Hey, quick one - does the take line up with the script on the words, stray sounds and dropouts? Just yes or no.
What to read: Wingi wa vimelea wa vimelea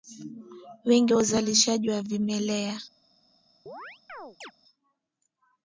no